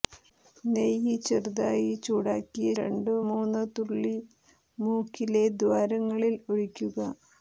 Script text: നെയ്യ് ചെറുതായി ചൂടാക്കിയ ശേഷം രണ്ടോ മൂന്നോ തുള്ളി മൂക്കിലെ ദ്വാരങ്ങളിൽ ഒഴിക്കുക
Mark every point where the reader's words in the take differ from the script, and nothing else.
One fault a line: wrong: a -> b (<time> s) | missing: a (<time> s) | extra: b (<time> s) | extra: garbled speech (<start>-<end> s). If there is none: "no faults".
missing: ശേഷം (2.7 s)